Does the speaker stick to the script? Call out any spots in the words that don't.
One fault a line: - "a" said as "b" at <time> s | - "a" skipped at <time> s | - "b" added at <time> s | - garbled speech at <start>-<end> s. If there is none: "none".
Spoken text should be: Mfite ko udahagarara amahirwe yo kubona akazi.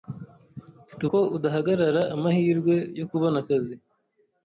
none